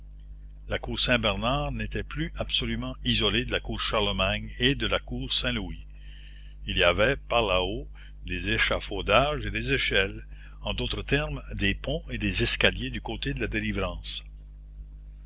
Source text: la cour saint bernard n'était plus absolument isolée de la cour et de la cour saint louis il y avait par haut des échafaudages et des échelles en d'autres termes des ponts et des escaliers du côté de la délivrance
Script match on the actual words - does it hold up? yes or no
no